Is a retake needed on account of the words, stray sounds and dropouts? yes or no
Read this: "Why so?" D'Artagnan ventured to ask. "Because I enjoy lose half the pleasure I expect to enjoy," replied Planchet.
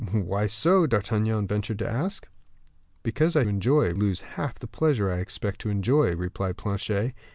no